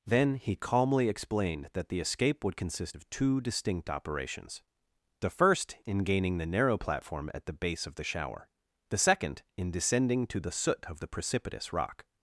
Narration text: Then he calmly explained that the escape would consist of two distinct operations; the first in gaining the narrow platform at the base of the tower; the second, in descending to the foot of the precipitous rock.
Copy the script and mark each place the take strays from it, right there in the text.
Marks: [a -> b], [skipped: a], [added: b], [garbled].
Then he calmly explained that the escape would consist of two distinct operations; the first in gaining the narrow platform at the base of the [tower; -> shower] the second, in descending to the [foot -> soot] of the precipitous rock.